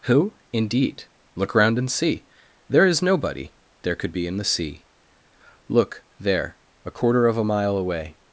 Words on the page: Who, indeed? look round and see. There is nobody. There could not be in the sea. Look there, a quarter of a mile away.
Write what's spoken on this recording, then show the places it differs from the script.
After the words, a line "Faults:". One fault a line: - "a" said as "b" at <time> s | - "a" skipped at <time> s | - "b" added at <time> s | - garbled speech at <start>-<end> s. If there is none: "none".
Who, indeed? look round and see. There is nobody. There could be in the sea. Look there, a quarter of a mile away.
Faults:
- "not" skipped at 4.1 s